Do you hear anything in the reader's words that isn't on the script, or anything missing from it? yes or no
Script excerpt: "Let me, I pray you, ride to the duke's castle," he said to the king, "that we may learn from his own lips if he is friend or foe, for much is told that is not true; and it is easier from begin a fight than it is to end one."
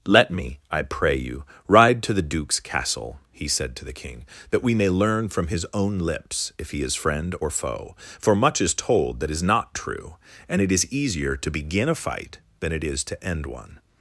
yes